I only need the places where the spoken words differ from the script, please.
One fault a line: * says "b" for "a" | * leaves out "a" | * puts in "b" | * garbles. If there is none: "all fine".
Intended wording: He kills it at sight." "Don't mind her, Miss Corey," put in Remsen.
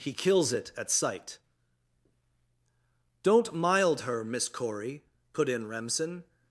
* says "mild" for "mind"